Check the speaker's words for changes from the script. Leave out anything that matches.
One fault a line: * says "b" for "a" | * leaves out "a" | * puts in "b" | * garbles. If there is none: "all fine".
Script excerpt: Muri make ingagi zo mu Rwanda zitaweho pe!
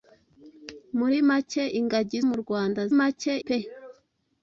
* leaves out "zo"
* says "make" for "zitaweho"